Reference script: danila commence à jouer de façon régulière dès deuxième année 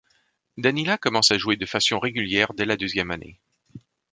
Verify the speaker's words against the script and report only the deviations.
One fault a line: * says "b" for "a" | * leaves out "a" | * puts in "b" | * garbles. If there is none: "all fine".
* puts in "la"